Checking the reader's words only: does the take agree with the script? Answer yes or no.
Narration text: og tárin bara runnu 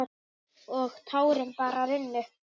yes